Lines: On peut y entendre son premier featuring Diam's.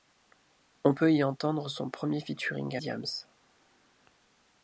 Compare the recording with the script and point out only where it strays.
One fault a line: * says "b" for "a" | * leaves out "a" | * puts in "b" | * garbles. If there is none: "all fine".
all fine